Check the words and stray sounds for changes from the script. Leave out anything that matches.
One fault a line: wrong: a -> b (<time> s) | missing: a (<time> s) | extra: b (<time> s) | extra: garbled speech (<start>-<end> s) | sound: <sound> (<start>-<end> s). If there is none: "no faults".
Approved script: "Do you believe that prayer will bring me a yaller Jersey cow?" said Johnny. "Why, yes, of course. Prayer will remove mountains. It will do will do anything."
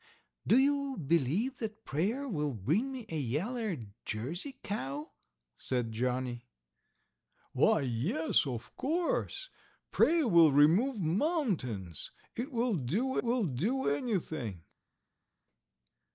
no faults